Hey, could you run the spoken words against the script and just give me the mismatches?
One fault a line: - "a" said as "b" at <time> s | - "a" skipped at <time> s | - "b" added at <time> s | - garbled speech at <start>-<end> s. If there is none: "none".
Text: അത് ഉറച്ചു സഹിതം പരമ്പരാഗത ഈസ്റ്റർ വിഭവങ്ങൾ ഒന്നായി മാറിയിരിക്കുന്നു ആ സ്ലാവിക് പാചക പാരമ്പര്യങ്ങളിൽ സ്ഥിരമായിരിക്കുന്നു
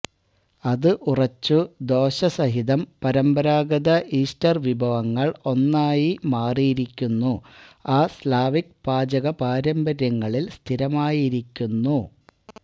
- "ദോശ" added at 1.9 s